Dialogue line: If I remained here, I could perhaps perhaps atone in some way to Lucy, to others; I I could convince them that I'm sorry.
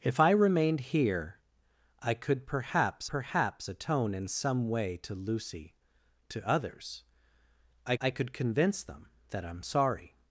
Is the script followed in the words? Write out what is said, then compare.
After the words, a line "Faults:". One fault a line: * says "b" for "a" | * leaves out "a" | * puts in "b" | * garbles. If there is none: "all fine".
If I remained here, I could perhaps perhaps atone in some way to Lucy, to others; I I could convince them that I'm sorry.
Faults:
all fine